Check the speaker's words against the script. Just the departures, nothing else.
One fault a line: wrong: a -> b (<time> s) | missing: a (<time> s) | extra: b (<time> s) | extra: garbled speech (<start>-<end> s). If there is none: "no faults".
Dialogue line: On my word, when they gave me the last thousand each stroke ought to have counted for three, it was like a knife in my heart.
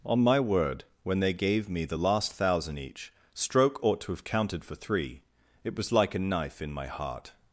no faults